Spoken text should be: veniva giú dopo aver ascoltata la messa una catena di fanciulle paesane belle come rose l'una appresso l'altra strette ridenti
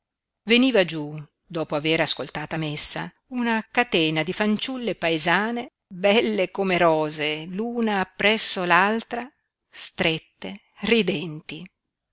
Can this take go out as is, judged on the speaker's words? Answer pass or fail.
fail